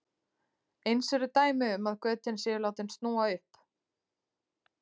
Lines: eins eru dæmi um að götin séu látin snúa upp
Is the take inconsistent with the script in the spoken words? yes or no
no